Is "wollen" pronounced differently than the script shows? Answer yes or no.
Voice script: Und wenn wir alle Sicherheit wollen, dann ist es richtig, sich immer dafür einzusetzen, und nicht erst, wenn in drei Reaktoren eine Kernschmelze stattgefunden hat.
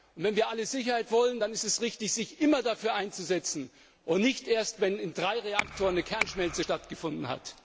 no